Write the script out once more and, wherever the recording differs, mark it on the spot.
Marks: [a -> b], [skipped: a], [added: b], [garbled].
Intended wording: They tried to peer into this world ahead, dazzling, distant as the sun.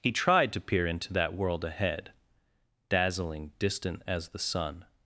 [They -> He] tried to peer into [this -> that] world ahead, dazzling, distant as the sun.